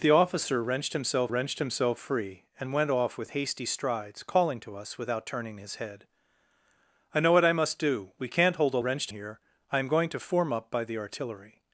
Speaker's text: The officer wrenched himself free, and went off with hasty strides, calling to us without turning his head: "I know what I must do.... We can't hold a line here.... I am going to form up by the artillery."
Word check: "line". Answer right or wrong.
wrong